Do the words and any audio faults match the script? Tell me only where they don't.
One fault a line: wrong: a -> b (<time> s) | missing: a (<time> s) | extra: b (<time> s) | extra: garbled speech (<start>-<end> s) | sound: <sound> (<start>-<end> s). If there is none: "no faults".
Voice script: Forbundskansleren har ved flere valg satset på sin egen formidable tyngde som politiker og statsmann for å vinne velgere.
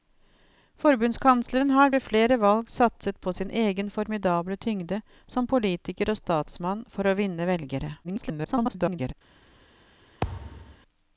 extra: garbled speech (8.0-9.1 s)
sound: thud (10.2-10.8 s)